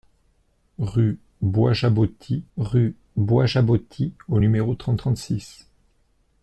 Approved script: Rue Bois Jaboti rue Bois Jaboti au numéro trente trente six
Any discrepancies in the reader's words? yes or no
no